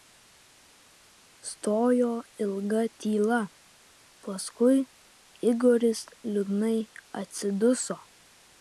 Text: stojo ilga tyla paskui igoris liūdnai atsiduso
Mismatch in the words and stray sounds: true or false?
false